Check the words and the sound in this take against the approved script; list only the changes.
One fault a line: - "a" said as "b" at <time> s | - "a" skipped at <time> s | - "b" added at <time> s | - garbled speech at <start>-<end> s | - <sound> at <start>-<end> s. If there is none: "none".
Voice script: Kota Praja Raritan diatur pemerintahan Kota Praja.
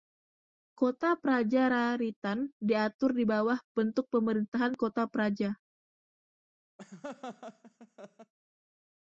- "di bawah bentuk" added at 3.1 s
- laugh at 6.8-8.3 s